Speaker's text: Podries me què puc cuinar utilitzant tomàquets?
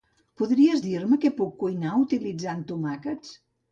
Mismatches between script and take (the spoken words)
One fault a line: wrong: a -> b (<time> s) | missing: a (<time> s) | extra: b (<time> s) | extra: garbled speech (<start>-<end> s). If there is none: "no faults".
extra: dir (0.9 s)